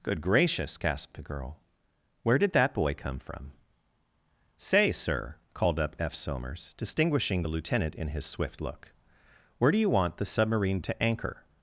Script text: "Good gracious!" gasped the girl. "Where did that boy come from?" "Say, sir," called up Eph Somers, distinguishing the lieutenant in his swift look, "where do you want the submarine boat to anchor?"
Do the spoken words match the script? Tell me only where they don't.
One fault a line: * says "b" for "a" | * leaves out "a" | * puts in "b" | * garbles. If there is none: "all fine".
* leaves out "boat"